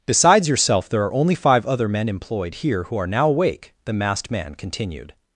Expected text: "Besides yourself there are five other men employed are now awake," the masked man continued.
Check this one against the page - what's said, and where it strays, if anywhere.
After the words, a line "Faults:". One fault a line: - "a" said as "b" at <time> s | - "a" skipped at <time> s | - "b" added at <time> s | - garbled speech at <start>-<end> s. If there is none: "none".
"Besides yourself there are only five other men employed here who are now awake," the masked man continued.
Faults:
- "only" added at 1.1 s
- "here who" added at 2.5 s